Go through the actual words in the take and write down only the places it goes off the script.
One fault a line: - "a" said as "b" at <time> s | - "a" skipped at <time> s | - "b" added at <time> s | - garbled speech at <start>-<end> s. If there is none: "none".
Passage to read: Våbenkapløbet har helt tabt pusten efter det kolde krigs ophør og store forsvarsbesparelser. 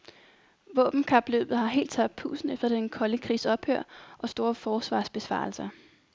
- "det" said as "den" at 2.7 s